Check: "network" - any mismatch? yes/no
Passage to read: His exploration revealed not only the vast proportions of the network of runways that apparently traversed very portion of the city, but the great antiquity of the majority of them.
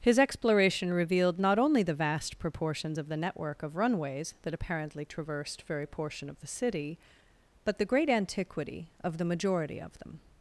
no